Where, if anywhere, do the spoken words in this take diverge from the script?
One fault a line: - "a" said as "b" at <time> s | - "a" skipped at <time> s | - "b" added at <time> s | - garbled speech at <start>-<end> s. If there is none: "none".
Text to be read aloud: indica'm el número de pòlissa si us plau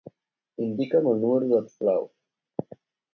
- "pòlissa si" skipped at 1.6 s